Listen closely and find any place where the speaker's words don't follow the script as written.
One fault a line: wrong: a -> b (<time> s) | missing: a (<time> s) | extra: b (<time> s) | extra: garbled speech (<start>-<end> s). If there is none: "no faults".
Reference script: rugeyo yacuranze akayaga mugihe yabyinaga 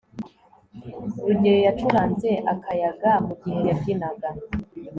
no faults